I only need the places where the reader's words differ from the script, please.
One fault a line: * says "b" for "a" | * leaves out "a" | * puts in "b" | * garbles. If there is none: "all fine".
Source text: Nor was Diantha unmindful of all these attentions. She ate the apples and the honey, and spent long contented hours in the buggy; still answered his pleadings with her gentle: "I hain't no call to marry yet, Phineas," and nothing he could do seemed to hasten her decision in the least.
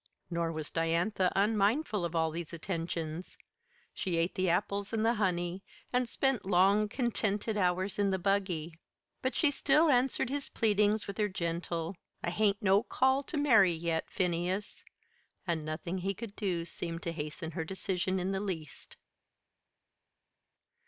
* puts in "but she"